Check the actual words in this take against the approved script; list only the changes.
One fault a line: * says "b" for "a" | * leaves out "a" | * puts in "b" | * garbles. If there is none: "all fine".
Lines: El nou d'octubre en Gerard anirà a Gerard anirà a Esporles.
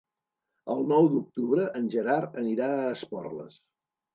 * leaves out "Gerard anirà a"